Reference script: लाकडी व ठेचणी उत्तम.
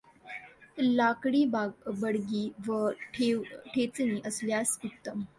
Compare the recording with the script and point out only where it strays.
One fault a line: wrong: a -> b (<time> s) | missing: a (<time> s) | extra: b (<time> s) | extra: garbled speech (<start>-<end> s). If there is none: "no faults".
extra: बडगी (1.5 s)
extra: असल्यास (4.3 s)